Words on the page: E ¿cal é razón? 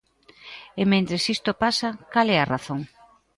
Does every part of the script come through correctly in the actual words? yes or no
no